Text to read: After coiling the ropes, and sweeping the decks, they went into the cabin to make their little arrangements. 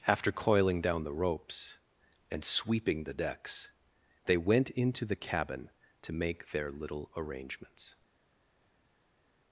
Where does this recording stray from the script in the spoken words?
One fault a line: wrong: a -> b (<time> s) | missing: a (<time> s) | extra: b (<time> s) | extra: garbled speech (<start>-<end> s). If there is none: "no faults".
extra: down (0.8 s)